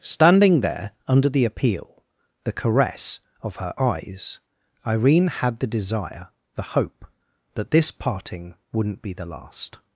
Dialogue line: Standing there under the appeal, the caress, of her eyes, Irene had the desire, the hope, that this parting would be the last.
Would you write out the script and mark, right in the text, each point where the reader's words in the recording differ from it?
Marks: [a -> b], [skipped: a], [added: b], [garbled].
Standing there under the appeal, the caress, of her eyes, Irene had the desire, the hope, that this parting [would -> wouldn't] be the last.